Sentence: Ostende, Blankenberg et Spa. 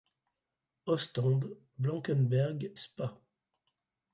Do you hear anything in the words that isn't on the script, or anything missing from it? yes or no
yes